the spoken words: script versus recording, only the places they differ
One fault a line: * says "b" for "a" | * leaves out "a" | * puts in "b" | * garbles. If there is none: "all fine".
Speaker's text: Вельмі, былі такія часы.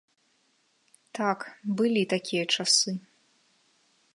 * says "Так" for "Вельмі"